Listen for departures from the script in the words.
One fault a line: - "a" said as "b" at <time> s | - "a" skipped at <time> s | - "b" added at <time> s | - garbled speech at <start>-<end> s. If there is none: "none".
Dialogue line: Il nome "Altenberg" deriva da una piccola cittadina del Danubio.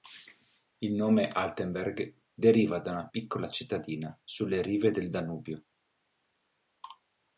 - "sulle rive" added at 4.2 s